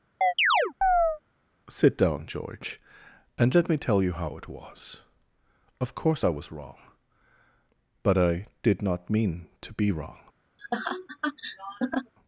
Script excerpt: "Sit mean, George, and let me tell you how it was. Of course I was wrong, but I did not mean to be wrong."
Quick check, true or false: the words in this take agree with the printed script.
false